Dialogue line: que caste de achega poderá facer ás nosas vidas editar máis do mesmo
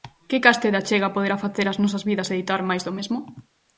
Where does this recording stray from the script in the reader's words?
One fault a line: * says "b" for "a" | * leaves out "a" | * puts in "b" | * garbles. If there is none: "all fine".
all fine